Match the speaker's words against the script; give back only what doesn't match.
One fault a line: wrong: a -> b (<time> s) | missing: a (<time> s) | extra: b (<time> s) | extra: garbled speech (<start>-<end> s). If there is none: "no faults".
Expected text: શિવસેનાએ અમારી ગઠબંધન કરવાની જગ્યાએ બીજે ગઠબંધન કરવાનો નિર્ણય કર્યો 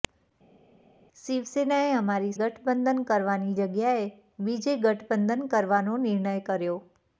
no faults